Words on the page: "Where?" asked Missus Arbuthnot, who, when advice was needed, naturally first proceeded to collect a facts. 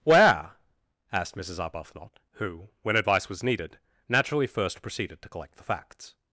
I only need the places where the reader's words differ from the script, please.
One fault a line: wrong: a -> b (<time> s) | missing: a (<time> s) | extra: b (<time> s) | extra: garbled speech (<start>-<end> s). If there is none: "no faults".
wrong: a -> the (5.6 s)